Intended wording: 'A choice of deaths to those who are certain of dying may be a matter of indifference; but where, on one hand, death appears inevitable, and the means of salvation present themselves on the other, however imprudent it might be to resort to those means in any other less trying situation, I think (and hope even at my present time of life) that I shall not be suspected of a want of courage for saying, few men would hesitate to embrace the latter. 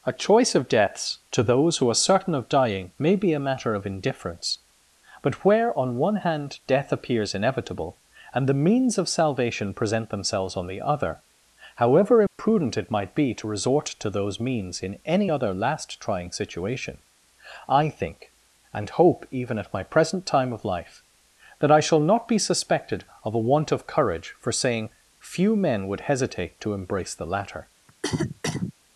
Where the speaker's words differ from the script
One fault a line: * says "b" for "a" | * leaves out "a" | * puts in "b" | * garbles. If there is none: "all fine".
* says "last" for "less"